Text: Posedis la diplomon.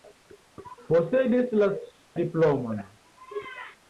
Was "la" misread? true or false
false